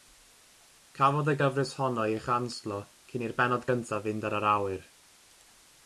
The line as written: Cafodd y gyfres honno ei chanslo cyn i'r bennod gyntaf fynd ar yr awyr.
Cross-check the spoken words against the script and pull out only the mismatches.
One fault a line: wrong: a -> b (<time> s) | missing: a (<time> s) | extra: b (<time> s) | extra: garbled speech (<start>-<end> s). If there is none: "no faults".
no faults